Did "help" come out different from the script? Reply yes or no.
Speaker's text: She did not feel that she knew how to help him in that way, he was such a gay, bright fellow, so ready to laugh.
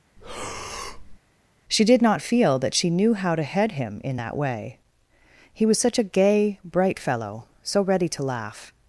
yes